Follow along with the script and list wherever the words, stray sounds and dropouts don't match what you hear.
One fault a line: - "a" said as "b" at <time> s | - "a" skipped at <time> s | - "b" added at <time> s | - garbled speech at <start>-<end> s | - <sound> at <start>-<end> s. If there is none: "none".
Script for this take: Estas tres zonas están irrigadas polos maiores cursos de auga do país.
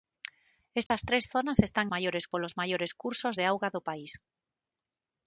- dropout at 0.9-0.9 s
- "irrigadas" said as "maiores" at 1.9 s